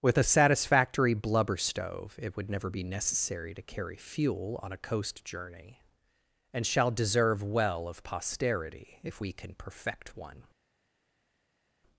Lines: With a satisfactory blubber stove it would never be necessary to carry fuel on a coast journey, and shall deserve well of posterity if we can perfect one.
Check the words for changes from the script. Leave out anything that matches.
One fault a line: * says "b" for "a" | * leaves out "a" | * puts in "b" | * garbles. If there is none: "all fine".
all fine